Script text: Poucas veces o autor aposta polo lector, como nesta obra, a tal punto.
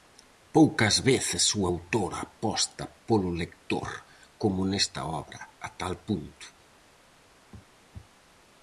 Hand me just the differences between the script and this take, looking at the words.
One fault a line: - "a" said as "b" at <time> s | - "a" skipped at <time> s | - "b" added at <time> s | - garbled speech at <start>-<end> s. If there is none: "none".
none